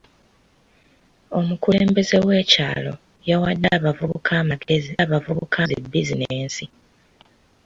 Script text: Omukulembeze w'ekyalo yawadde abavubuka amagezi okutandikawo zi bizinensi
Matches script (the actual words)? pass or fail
fail